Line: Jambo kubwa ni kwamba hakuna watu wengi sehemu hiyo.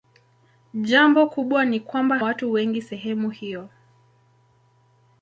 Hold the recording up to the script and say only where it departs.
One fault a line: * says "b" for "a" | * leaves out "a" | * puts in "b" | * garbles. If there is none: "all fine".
* leaves out "hakuna"